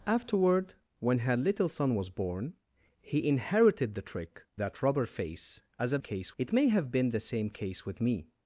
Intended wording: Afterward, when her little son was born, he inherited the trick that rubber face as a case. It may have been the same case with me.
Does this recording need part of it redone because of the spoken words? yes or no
no